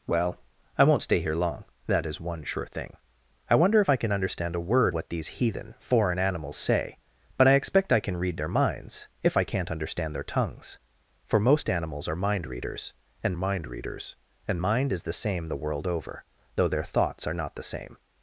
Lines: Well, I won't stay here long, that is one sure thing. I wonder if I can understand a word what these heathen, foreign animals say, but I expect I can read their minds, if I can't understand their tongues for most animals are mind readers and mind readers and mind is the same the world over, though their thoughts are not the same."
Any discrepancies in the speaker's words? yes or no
no